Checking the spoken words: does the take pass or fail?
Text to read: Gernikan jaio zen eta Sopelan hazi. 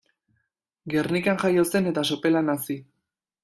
pass